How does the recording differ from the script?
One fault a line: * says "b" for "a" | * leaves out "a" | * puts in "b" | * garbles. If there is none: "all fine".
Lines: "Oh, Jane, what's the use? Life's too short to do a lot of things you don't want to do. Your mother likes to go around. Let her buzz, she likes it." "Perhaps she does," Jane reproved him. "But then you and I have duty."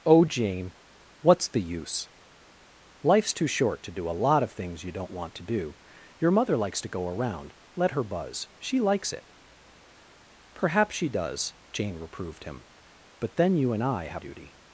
all fine